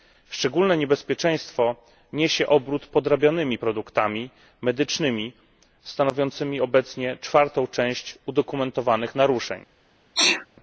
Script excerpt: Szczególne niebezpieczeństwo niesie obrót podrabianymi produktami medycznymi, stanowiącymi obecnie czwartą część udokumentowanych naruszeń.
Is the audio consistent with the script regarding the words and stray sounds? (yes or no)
no